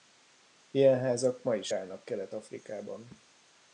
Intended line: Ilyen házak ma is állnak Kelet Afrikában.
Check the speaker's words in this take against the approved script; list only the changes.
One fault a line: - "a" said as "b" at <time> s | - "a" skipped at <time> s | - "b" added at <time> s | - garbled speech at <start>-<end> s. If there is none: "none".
none